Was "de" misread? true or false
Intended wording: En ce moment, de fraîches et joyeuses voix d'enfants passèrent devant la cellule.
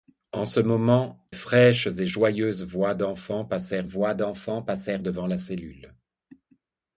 true